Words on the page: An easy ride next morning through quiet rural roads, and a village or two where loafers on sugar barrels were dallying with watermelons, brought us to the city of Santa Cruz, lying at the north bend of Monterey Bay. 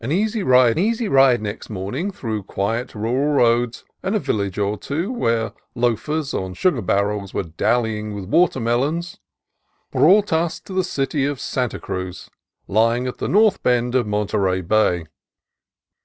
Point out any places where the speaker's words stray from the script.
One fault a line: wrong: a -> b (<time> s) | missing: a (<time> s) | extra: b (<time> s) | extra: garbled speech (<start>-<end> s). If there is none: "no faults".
extra: easy ride (0.8 s)